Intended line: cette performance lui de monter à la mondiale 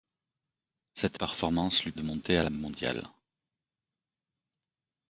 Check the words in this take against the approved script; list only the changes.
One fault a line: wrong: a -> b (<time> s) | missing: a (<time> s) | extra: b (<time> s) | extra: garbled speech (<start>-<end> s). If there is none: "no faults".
no faults